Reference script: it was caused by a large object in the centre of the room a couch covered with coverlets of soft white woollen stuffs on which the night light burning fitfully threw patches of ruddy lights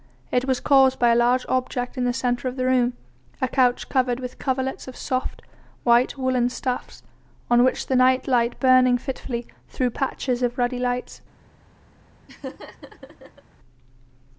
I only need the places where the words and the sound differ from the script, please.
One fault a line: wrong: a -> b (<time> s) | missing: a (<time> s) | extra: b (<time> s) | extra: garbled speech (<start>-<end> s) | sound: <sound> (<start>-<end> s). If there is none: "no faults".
sound: laugh (12.3-13.4 s)